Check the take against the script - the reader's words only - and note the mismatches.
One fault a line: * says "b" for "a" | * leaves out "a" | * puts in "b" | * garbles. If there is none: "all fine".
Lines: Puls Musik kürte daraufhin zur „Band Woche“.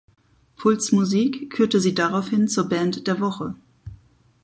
* puts in "sie"
* puts in "der"